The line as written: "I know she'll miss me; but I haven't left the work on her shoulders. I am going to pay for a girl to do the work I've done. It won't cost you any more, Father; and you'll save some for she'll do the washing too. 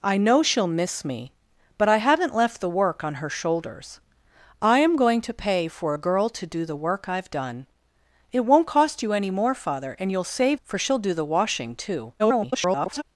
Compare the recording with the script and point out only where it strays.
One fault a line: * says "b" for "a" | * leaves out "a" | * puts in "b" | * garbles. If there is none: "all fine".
* leaves out "some"
* garbles